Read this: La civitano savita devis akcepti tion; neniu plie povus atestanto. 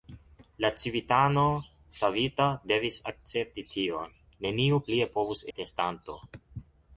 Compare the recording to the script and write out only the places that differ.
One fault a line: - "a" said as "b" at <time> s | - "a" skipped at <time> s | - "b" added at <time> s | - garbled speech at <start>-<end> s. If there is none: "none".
none